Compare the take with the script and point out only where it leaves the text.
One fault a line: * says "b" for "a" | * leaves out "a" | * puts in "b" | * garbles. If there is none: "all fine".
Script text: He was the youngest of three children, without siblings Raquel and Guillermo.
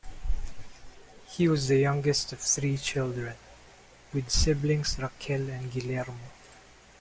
* says "with" for "without"